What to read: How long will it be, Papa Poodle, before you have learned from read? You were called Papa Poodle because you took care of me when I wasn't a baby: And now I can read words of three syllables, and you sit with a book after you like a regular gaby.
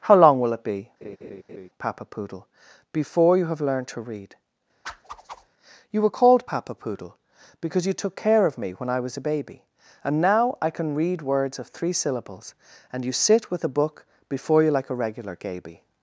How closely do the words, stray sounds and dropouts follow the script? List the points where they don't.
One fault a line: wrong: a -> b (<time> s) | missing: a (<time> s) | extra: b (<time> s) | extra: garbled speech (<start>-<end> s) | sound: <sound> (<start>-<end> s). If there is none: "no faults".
sound: laugh (1.0-1.7 s)
wrong: from -> to (3.9 s)
sound: whoosh (4.8-5.5 s)
wrong: wasn't -> was (9.0 s)
wrong: after -> before (14.3 s)